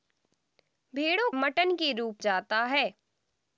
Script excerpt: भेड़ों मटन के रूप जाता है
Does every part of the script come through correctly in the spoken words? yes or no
yes